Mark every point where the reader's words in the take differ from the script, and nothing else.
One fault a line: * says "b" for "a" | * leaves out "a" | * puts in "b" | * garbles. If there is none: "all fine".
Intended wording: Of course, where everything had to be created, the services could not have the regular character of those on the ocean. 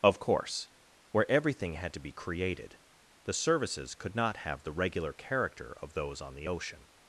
all fine